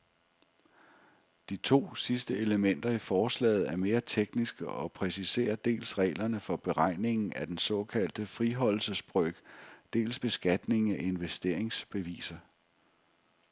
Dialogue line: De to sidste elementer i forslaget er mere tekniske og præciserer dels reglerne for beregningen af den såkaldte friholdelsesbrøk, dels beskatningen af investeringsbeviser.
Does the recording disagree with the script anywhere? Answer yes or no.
no